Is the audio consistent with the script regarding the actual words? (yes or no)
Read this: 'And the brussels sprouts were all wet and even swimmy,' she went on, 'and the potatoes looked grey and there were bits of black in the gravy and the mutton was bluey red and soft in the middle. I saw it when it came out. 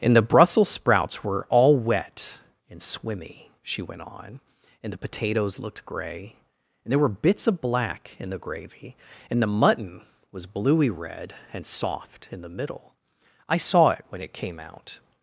no